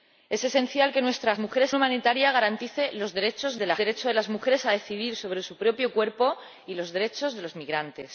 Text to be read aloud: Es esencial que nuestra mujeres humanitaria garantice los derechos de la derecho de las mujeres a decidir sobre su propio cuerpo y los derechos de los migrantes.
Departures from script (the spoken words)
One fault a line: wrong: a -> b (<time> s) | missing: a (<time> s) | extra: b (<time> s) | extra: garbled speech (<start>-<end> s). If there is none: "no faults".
no faults